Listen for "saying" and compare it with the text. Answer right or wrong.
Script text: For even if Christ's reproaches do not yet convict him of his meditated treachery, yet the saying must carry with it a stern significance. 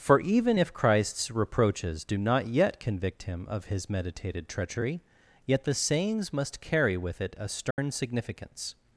wrong